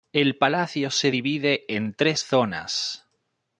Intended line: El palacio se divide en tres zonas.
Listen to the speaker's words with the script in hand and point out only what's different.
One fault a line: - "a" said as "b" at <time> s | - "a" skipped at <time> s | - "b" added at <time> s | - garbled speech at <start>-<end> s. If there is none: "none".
none